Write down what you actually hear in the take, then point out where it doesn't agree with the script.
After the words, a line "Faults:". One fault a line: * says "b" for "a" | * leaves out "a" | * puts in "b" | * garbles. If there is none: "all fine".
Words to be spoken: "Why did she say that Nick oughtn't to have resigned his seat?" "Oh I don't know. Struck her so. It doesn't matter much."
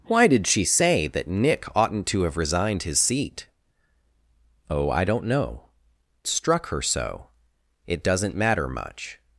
"Why did she say that Nick oughtn't to have resigned his seat?" "Oh I don't know. Struck her so. It doesn't matter much."
Faults:
all fine